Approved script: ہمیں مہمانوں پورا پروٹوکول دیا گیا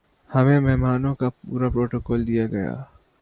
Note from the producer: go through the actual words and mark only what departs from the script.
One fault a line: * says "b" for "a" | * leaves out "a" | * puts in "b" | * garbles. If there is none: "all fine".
* puts in "کا"